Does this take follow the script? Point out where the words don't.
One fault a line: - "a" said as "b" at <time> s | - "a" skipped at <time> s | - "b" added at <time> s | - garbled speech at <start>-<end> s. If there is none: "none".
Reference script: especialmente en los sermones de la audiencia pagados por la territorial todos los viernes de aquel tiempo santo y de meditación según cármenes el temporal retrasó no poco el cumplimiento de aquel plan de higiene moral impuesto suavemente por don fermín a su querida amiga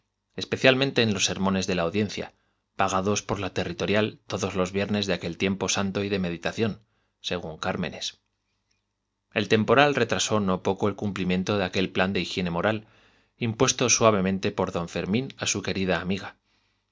none